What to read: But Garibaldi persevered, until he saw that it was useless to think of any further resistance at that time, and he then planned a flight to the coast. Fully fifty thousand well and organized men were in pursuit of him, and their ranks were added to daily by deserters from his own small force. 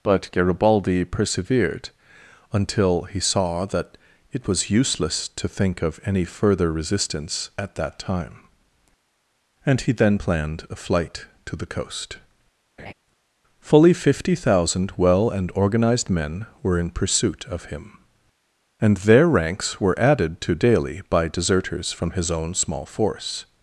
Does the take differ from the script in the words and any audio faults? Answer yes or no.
yes